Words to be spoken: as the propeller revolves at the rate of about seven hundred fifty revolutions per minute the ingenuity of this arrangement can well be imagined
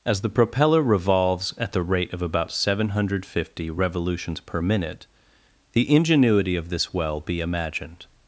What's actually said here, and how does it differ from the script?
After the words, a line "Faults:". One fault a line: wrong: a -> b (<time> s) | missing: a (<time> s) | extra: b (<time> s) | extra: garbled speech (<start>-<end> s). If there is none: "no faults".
as the propeller revolves at the rate of about seven hundred fifty revolutions per minute the ingenuity of this well be imagined
Faults:
missing: arrangement can (6.9 s)